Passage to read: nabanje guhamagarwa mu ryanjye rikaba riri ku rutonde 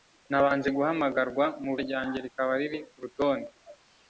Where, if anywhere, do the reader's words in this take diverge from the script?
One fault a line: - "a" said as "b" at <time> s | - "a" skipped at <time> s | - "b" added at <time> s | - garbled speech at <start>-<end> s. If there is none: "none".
none